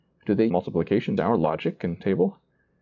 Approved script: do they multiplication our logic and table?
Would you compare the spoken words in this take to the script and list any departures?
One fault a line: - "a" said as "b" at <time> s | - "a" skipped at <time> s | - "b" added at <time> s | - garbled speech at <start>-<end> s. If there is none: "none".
none